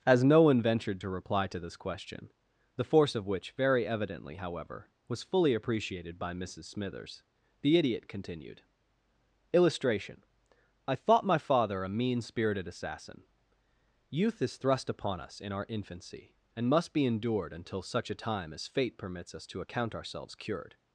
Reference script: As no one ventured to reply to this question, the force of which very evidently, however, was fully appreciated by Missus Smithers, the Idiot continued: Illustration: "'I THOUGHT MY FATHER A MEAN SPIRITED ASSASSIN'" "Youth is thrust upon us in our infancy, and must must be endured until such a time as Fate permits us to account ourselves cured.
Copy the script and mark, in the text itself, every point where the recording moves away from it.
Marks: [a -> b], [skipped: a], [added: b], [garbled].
As no one ventured to reply to this question, the force of which very evidently, however, was fully appreciated by Missus Smithers, the Idiot continued: Illustration: "'I THOUGHT MY FATHER A MEAN SPIRITED ASSASSIN'" "Youth is thrust upon us in our infancy, and must [skipped: must] be endured until such a time as Fate permits us to account ourselves cured.